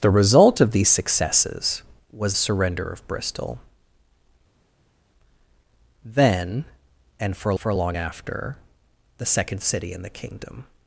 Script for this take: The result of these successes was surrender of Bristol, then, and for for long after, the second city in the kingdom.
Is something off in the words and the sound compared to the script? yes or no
no